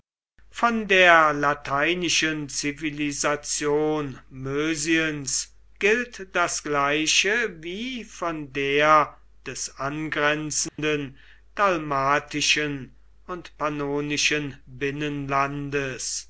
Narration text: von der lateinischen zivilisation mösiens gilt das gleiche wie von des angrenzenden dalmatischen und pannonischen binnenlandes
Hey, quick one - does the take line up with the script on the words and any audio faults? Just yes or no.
no